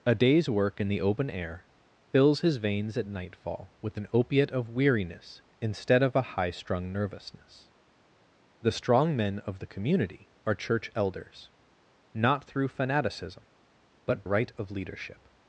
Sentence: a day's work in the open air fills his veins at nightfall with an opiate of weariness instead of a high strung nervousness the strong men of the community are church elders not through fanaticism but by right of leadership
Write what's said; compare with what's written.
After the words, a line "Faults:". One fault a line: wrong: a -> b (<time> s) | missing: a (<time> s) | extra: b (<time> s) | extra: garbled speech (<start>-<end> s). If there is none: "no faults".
a day's work in the open air fills his veins at nightfall with an opiate of weariness instead of a high strung nervousness the strong men of the community are church elders not through fanaticism but right of leadership
Faults:
missing: by (14.2 s)